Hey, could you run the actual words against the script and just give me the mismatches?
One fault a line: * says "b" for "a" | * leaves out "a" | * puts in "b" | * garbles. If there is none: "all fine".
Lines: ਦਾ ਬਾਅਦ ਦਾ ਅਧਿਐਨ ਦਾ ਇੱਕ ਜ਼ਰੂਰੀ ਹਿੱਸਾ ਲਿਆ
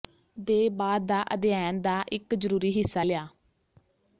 * says "ਦੇ" for "ਦਾ"